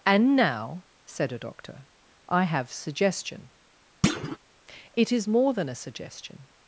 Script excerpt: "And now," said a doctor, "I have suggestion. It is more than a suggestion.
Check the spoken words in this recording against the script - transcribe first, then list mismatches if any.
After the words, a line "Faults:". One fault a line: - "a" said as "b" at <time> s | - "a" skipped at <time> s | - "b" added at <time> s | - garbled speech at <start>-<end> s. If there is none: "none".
"And now," said a doctor, "I have suggestion. It is more than a suggestion.
Faults:
none